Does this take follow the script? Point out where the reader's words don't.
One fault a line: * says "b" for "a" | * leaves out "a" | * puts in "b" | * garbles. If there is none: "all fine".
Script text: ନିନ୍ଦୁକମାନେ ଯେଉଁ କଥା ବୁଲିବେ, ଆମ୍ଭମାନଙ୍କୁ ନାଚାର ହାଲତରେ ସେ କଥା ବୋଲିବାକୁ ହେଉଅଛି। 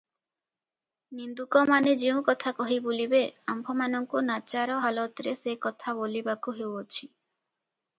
* puts in "କହି"